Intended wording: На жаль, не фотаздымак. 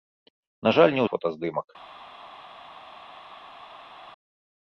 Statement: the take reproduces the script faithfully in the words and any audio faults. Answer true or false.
true